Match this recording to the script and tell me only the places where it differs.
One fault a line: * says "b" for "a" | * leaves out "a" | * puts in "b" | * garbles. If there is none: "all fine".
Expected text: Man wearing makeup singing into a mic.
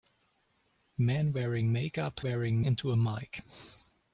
* says "wearing" for "singing"